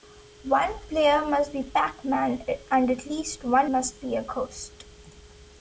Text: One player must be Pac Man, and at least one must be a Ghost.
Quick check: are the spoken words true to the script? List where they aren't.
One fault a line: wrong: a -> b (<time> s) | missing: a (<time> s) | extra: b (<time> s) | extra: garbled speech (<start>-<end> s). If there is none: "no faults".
no faults